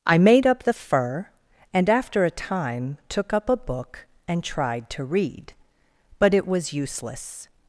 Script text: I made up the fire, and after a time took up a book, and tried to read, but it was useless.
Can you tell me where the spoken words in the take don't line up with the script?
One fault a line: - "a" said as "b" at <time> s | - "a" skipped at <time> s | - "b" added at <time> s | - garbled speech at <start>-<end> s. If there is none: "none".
- "fire" said as "fur" at 0.7 s